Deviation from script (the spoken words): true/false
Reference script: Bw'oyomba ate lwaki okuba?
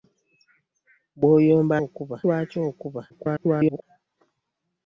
true